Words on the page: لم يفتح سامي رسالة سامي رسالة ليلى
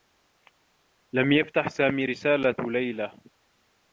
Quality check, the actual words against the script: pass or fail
fail